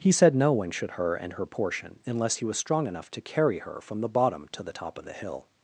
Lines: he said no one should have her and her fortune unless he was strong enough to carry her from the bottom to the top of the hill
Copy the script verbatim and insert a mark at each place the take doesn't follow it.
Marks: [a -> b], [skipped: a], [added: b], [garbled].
he said no one should [skipped: have] her and her [fortune -> portion] unless he was strong enough to carry her from the bottom to the top of the hill